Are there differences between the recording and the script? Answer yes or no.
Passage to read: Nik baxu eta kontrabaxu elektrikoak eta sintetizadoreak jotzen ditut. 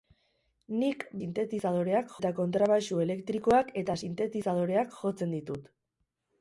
yes